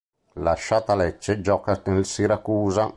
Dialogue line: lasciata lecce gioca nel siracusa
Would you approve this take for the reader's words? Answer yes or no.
yes